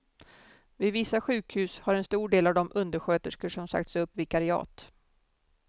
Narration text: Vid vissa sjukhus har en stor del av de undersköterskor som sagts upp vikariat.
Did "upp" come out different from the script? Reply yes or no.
no